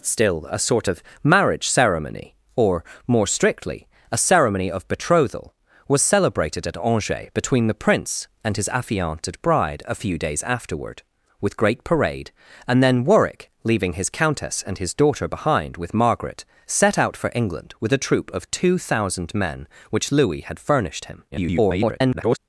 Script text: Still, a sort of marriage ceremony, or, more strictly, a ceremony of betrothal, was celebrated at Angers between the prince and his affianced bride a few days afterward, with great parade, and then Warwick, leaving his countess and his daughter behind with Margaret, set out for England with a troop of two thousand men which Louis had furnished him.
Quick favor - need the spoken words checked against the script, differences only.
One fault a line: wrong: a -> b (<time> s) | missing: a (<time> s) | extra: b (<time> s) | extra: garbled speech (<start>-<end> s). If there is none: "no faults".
extra: garbled speech (21.3-22.4 s)